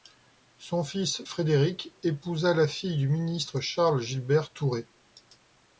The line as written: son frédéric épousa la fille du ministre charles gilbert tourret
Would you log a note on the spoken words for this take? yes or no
yes